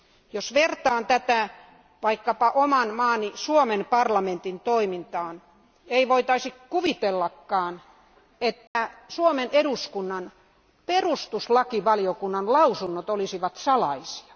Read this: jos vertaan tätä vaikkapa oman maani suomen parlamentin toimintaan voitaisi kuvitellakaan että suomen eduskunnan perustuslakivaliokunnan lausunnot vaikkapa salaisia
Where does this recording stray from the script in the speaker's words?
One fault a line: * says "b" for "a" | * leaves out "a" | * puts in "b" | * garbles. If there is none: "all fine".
* puts in "ei"
* says "olisivat" for "vaikkapa"